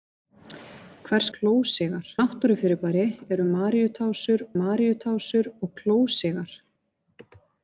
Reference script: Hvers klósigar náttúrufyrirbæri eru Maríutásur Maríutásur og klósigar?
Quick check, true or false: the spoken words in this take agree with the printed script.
true